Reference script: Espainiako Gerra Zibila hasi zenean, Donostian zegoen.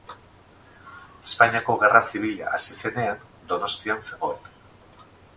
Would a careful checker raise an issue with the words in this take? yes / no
no